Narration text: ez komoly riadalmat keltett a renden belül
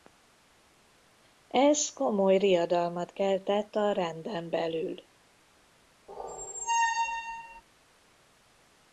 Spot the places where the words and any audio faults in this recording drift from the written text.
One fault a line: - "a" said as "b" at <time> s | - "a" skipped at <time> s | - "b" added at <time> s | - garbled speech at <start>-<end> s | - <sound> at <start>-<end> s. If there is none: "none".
- squeak at 6.1-7.6 s